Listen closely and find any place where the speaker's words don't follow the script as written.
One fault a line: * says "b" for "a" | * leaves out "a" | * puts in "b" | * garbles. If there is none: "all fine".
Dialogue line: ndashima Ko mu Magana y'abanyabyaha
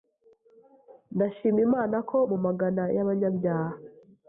* puts in "Imana"